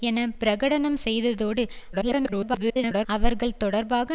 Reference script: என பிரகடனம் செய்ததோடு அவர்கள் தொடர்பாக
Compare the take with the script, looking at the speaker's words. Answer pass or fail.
fail